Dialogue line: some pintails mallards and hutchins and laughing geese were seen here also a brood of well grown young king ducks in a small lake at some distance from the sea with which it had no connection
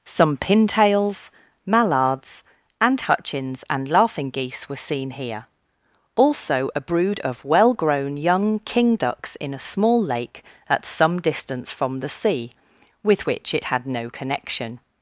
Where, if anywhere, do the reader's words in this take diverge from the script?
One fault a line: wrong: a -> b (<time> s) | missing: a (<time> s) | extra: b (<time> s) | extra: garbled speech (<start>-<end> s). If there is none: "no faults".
no faults